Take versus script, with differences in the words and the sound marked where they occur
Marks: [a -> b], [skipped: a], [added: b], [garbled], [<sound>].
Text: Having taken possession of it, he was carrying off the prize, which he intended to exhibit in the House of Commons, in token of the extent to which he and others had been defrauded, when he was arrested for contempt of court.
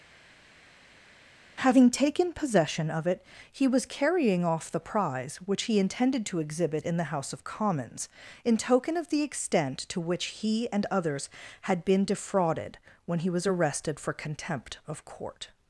Having taken possession of it, he was carrying off the prize, which he intended to exhibit in the House of Commons, in token of the extent to which he and others had been defrauded, when he was arrested for contempt of court.